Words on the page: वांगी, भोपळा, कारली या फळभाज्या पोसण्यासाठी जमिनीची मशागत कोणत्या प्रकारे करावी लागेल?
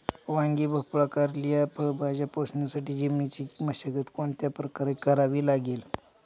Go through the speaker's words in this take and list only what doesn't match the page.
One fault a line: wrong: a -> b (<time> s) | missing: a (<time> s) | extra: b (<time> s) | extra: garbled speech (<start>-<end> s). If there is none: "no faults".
no faults